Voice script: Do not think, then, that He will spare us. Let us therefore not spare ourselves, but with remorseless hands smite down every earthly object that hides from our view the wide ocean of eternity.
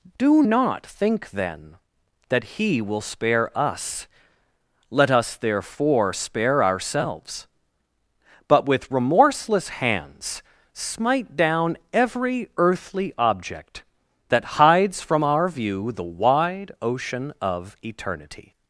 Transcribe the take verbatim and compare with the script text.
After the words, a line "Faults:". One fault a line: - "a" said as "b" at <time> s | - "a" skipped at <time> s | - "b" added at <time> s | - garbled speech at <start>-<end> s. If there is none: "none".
Do not think, then, that He will spare us. Let us therefore spare ourselves, but with remorseless hands smite down every earthly object that hides from our view the wide ocean of eternity.
Faults:
- "not" skipped at 6.1 s